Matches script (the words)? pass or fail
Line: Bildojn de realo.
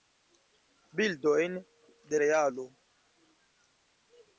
pass